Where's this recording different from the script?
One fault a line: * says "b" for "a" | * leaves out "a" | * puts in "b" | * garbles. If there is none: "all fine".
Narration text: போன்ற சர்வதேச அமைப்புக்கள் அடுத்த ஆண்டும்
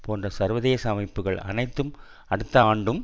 * puts in "அனைத்தும்"